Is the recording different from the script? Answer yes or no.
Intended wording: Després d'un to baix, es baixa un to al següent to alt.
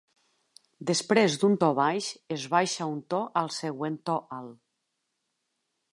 no